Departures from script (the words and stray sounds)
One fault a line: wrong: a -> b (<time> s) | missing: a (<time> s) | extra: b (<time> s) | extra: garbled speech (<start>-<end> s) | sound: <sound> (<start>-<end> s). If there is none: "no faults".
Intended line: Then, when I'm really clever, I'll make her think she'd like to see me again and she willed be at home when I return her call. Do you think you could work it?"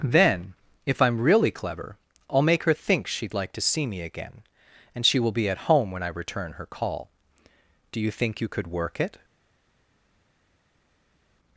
wrong: when -> if (0.9 s)
wrong: willed -> will (5.2 s)